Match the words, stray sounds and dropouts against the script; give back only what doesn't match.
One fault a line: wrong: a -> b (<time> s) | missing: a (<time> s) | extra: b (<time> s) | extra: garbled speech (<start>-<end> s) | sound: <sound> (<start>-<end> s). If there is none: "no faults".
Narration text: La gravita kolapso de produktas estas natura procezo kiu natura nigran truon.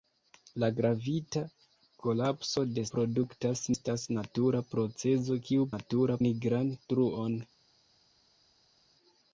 no faults